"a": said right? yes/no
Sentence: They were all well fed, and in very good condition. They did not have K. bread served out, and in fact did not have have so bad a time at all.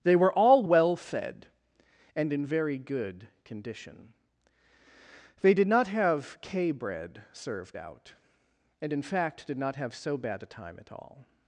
yes